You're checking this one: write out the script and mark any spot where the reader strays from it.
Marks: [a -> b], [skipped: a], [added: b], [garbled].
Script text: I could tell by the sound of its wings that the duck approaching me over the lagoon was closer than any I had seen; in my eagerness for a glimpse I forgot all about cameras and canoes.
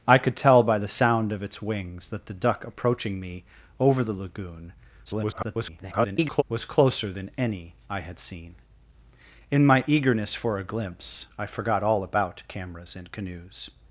I could tell by the sound of its wings that the duck approaching me over the lagoon [garbled] was closer than any I had seen; in my eagerness for a glimpse I forgot all about cameras and canoes.